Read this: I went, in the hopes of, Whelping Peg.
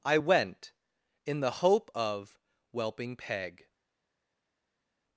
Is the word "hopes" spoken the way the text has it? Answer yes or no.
no